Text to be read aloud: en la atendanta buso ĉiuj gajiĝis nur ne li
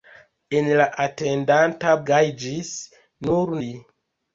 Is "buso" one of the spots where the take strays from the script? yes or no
yes